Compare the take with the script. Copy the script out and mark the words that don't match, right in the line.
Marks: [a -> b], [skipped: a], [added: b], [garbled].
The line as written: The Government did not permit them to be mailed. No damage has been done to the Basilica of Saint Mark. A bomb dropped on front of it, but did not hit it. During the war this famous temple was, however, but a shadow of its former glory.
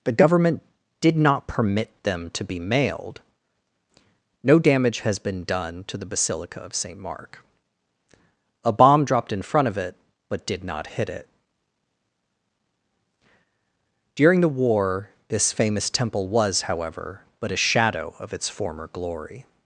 The Government did not permit them to be mailed. No damage has been done to the Basilica of Saint Mark. A bomb dropped [on -> in] front of it, but did not hit it. During the war this famous temple was, however, but a shadow of its former glory.